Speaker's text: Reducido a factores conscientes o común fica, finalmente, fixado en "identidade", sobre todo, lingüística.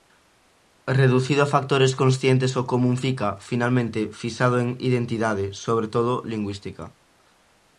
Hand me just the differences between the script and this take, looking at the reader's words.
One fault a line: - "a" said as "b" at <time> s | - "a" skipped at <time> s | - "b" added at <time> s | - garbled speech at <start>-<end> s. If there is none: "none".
none